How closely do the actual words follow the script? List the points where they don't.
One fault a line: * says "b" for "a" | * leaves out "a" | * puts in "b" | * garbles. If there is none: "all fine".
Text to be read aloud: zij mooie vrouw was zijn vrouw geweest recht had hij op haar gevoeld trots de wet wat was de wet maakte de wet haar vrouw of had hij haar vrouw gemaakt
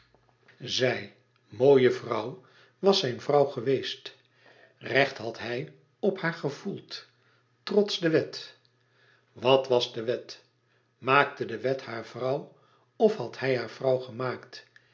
all fine